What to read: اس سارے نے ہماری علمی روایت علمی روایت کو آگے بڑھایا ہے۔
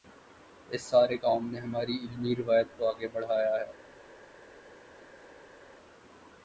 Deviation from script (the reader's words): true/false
true